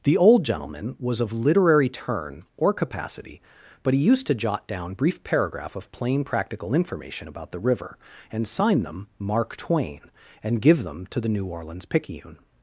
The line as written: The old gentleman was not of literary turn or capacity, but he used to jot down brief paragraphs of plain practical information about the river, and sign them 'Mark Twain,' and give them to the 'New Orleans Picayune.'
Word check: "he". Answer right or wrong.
right